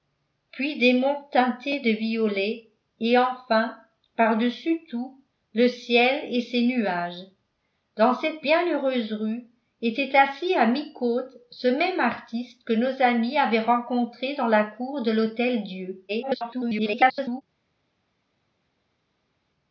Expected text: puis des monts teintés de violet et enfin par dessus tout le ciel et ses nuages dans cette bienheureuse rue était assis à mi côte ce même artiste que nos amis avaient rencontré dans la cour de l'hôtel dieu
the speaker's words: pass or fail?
fail